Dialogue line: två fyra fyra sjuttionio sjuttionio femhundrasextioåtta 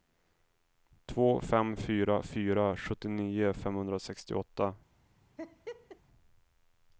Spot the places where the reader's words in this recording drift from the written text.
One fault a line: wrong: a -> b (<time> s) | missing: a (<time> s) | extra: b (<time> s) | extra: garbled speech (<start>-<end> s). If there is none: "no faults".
extra: fem (1.4 s)
missing: sjuttionio (3.5 s)